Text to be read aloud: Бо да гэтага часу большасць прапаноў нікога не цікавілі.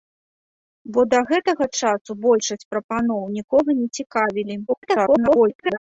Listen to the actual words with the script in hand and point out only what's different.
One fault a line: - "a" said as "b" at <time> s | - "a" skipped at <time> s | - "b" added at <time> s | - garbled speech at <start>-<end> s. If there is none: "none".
- garbled speech at 4.7-5.8 s